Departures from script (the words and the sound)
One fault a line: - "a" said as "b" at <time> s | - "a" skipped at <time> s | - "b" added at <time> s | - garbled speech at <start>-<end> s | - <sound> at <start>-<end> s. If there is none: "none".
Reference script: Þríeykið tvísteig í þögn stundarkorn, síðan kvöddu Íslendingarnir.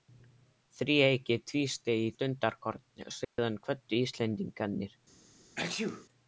- "þögn" skipped at 2.1 s
- dropout at 3.2-3.4 s
- sneeze at 5.6-6.1 s